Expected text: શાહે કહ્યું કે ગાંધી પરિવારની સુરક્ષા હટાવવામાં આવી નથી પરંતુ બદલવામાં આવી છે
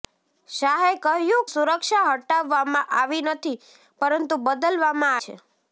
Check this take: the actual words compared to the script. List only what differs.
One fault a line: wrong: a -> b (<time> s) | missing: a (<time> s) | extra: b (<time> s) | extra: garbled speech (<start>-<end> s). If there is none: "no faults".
missing: કે ગાંધી પરિવારની (1.4 s)
missing: આવી (5.2 s)